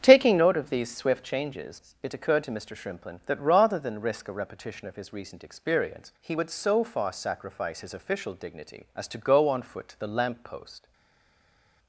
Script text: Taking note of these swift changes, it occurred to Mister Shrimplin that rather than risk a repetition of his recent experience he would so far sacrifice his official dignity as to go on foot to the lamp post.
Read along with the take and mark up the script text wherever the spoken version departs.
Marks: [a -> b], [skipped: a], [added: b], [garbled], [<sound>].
Taking note of these swift changes, it occurred to Mister Shrimplin that rather than risk a repetition of his recent experience he would so far sacrifice his official dignity as to go on foot to the lamp post.